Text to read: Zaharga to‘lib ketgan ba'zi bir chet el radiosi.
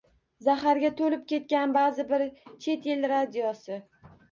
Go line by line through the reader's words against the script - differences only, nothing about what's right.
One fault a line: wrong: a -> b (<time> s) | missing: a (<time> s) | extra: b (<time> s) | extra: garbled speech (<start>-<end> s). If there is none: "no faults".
no faults